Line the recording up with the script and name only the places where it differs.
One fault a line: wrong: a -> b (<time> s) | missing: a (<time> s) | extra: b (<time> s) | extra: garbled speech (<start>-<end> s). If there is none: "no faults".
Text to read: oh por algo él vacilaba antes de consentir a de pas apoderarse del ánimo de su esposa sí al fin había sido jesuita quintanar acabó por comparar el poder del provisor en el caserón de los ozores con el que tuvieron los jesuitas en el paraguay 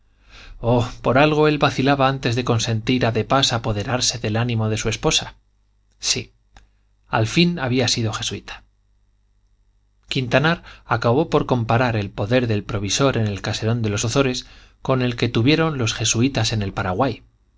no faults